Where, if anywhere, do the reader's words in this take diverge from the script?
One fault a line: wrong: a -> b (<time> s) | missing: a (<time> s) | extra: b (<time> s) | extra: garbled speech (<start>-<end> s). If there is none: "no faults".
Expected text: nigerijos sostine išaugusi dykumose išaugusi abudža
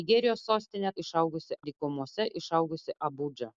no faults